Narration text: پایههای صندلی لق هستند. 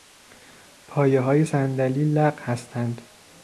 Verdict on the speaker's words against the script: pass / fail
pass